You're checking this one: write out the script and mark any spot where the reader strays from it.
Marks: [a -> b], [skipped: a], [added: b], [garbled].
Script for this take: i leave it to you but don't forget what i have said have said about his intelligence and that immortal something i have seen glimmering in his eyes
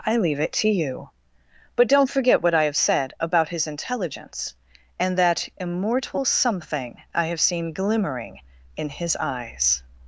i leave it to you but don't forget what i have said [skipped: have said] about his intelligence and that immortal something i have seen glimmering in his eyes